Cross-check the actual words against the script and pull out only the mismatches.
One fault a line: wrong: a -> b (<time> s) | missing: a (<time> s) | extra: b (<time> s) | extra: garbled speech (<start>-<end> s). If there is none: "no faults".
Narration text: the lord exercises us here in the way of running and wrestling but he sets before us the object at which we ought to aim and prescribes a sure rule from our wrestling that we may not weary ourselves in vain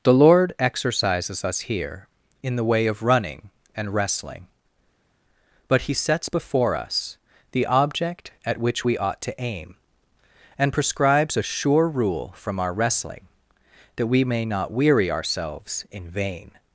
no faults